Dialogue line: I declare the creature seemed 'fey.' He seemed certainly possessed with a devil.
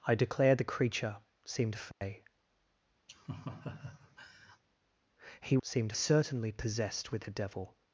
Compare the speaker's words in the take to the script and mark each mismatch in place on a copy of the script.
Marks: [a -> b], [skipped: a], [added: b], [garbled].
I declare the creature seemed 'fey.' He seemed certainly possessed with a devil.